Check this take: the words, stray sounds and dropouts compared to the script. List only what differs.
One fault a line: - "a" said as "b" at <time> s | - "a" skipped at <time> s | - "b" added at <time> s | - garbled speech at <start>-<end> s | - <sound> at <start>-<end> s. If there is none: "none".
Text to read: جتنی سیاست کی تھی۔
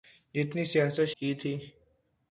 none